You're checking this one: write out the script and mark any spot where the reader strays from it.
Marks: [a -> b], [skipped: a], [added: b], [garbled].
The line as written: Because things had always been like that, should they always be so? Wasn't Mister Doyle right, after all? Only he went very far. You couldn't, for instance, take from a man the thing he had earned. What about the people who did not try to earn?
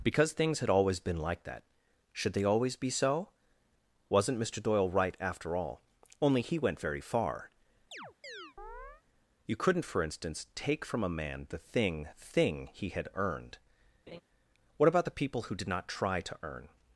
Because things had always been like that, should they always be so? Wasn't Mister Doyle right, after all? Only he went very far. You couldn't, for instance, take from a man the thing [added: thing] he had earned. What about the people who did not try to earn?